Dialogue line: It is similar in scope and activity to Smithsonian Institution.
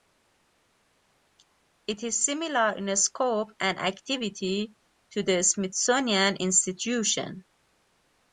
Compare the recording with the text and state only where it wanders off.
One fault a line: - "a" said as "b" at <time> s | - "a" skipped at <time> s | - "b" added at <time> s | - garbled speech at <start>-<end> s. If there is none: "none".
- "the" added at 5.2 s